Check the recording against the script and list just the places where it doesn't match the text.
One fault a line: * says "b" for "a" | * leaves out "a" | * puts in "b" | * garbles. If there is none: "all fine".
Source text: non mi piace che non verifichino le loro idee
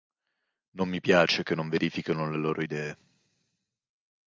all fine